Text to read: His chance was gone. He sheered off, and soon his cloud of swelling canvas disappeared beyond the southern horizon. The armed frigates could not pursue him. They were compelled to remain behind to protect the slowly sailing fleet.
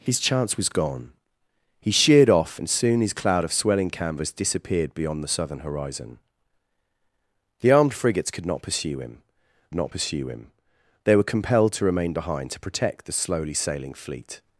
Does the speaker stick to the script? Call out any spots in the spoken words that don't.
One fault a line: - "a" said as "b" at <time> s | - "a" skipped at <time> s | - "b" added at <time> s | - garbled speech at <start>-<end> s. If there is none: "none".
- "not pursue him" added at 9.7 s